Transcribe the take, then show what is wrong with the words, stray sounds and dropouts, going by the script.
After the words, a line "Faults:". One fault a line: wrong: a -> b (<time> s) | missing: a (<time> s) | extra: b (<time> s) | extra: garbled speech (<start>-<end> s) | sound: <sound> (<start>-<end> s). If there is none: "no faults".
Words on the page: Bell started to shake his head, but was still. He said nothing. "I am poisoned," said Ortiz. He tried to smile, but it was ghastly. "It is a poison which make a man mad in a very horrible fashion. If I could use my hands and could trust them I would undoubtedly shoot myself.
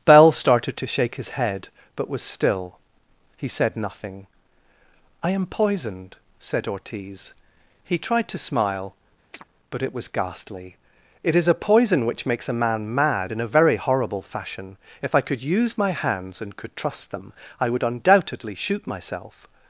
Bell started to shake his head, but was still. He said nothing. "I am poisoned," said Ortiz. He tried to smile, but it was ghastly. "It is a poison which makes a man mad in a very horrible fashion. If I could use my hands and could trust them I would undoubtedly shoot myself.
Faults:
sound: chirp (9.3-9.4 s)
wrong: make -> makes (12.3 s)